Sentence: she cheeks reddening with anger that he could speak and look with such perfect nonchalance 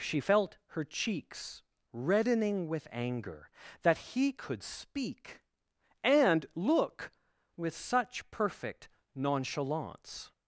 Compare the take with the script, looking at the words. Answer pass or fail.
fail